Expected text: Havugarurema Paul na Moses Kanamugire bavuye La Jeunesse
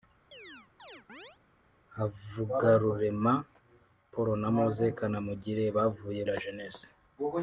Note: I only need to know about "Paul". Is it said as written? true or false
true